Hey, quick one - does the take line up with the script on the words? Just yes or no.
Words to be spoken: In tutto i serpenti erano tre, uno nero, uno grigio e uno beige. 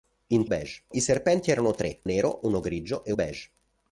no